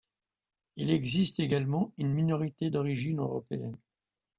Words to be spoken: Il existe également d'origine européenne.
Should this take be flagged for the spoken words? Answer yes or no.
yes